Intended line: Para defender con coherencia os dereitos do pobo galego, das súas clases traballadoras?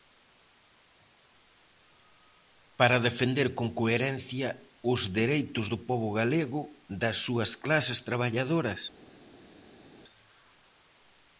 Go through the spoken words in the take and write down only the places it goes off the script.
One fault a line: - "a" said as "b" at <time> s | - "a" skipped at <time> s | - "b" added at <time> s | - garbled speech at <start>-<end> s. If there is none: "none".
none